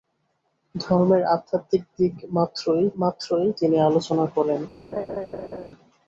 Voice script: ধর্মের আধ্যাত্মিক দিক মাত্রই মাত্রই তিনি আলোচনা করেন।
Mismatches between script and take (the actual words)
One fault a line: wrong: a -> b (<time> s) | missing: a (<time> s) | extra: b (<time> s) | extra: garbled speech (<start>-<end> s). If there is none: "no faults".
no faults